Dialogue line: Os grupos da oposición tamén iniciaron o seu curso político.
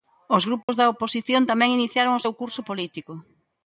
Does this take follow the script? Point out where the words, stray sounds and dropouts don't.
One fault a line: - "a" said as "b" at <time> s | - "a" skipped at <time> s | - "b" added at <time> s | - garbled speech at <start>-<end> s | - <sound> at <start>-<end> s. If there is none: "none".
- dropout at 0.6-0.7 s